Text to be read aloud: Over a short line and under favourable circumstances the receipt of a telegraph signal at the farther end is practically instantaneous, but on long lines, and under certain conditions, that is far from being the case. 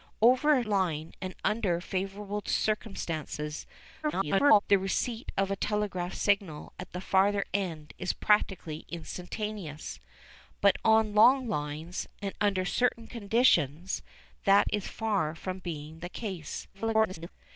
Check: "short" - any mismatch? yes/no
yes